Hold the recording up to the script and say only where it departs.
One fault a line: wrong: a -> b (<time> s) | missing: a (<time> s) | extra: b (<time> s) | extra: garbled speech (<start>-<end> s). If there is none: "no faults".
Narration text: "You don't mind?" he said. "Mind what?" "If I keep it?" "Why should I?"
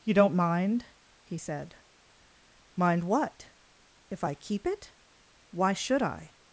no faults